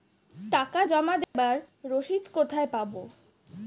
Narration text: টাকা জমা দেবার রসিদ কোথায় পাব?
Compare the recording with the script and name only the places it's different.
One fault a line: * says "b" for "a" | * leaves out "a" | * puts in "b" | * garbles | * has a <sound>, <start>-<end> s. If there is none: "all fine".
* has a dropout, 1.2-1.3 s